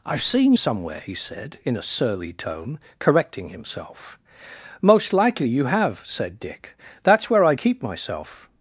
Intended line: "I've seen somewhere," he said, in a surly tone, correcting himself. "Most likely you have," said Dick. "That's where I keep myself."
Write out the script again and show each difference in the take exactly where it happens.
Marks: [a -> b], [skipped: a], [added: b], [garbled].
"I've seen somewhere," he said, in a surly tone, correcting himself. "Most likely you have," said Dick. "That's where I keep myself."